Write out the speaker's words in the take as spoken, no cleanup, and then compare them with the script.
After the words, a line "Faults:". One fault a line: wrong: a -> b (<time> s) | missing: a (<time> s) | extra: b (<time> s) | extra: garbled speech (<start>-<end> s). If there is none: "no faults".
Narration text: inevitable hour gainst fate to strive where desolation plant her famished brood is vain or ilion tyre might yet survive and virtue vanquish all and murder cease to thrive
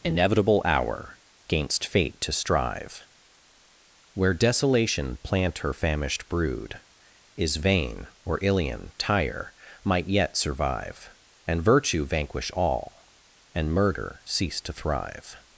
inevitable hour gainst fate to strive where desolation plant her famished brood is vain or ilion tyre might yet survive and virtue vanquish all and murder cease to thrive
Faults:
no faults